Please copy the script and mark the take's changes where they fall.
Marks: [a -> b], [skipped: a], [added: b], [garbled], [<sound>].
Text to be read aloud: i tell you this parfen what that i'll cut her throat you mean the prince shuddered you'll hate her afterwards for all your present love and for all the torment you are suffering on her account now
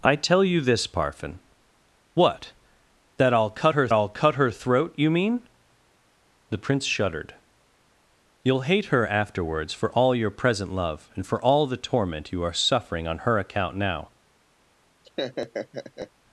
i tell you this parfen what that i'll cut her [added: i'll cut her] throat you mean the prince shuddered you'll hate her afterwards for all your present love and for all the torment you are suffering on her account now [laugh]